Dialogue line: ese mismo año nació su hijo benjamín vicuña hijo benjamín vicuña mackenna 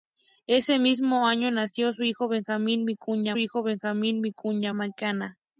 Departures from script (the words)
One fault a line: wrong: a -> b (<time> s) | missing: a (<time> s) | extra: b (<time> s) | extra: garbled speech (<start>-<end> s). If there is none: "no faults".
no faults